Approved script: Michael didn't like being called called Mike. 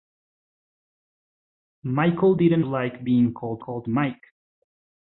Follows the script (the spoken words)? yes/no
yes